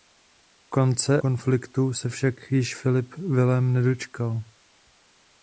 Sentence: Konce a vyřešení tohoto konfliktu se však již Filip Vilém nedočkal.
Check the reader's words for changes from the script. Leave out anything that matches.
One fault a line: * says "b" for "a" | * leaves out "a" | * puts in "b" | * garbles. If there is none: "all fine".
* leaves out "a vyřešení tohoto"